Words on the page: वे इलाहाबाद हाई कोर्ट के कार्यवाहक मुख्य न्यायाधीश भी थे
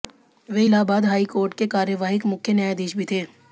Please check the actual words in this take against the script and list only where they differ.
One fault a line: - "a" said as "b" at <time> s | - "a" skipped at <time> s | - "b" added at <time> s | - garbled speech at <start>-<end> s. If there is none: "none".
none